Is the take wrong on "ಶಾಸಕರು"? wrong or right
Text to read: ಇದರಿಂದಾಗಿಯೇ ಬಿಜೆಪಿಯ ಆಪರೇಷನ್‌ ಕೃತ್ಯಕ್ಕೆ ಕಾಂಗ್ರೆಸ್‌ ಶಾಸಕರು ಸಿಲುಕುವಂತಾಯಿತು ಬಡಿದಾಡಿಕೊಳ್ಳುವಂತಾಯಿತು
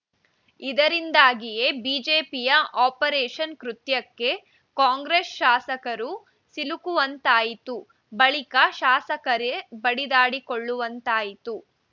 right